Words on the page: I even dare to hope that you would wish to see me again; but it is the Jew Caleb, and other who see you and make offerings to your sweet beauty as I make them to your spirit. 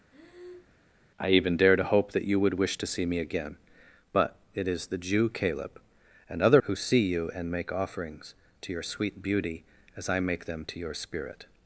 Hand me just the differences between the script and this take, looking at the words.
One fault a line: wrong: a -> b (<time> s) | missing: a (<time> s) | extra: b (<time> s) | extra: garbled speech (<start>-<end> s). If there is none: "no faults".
no faults